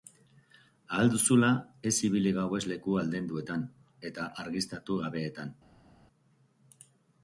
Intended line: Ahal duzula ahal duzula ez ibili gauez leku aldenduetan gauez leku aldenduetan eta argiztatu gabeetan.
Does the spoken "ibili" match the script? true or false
true